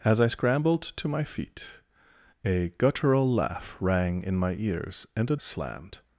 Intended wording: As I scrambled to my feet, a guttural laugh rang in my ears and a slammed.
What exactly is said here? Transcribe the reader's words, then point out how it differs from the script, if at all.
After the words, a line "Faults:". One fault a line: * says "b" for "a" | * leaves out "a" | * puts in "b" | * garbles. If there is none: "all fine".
As I scrambled to my feet, a guttural laugh rang in my ears and a slammed.
Faults:
all fine